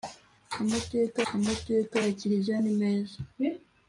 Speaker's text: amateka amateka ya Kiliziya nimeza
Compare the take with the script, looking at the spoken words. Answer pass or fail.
pass